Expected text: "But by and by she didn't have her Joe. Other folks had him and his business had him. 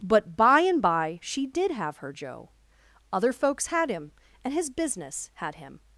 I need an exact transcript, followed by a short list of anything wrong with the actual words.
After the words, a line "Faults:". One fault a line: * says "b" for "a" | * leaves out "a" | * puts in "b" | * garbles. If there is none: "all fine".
"But by and by she did have her Joe. Other folks had him and his business had him.
Faults:
* says "did" for "didn't"